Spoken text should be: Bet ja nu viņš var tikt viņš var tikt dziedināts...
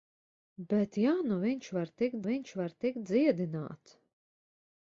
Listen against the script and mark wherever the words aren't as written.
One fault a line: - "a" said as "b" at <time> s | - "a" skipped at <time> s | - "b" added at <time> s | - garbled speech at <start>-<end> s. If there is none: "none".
none